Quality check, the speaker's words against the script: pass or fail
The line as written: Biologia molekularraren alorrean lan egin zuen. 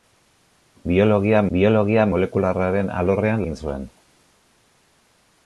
fail